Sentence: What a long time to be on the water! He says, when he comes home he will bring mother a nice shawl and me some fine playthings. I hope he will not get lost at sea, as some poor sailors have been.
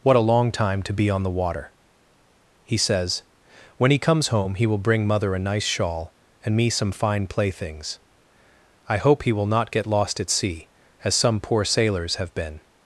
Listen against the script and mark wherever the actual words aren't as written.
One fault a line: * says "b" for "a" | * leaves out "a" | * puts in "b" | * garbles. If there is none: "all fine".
all fine